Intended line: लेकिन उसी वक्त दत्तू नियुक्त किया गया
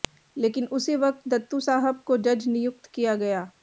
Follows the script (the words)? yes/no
no